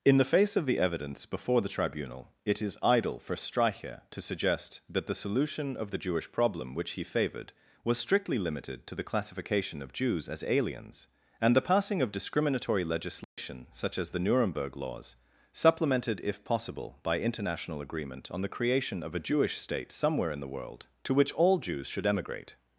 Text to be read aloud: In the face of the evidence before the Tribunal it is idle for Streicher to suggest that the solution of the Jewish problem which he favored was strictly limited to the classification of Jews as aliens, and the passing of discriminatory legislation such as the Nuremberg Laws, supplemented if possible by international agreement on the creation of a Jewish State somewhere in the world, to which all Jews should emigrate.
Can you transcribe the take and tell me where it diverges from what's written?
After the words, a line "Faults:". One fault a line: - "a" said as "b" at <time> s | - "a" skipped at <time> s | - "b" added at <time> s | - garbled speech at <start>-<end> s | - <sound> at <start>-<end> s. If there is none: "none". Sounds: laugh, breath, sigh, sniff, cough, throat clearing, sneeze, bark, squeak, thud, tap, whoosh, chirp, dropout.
In the face of the evidence before the Tribunal it is idle for Streicher to suggest that the solution of the Jewish problem which he favored was strictly limited to the classification of Jews as aliens, and the passing of discriminatory legislation such as the Nuremberg Laws, supplemented if possible by international agreement on the creation of a Jewish State somewhere in the world, to which all Jews should emigrate.
Faults:
- dropout at 13.2-13.4 s